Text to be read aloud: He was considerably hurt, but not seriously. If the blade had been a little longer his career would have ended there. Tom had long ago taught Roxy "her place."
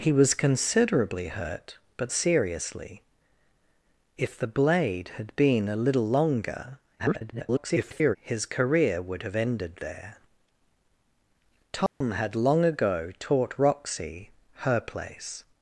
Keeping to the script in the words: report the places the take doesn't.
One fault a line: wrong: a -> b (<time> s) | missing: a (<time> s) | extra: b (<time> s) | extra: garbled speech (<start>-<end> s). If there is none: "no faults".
missing: not (2.1 s)
extra: garbled speech (7.0-8.2 s)